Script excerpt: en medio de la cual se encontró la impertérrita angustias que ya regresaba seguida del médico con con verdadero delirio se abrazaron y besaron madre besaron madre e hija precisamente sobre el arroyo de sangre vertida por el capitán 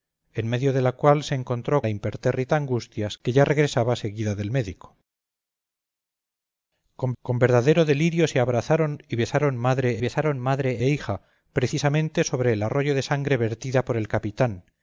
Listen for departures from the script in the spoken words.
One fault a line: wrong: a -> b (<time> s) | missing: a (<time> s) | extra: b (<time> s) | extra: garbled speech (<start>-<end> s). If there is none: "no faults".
no faults